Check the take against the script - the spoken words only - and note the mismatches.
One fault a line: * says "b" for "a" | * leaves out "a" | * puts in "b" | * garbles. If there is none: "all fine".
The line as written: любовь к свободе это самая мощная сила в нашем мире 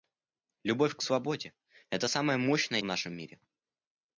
* leaves out "сила"